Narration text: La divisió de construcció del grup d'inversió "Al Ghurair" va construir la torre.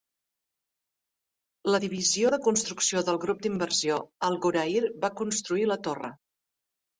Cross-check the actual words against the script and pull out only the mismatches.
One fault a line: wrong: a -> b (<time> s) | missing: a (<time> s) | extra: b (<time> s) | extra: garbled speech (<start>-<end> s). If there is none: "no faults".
no faults